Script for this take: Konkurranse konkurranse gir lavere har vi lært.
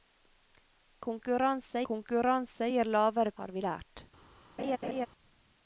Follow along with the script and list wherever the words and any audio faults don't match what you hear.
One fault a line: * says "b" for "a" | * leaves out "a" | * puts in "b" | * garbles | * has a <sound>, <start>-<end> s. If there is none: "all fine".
* has a laugh, 4.6-5.1 s